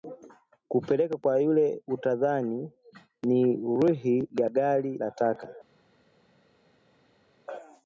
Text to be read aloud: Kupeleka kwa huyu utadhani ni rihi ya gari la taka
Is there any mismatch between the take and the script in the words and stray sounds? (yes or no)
yes